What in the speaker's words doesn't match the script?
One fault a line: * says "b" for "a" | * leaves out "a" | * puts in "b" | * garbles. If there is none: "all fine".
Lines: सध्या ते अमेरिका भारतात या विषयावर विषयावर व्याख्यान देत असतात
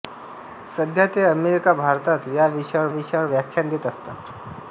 all fine